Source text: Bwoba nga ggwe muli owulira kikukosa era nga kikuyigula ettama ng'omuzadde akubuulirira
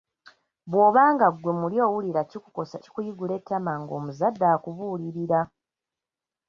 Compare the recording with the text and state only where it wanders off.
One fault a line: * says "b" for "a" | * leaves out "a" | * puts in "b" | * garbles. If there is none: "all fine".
* leaves out "era nga"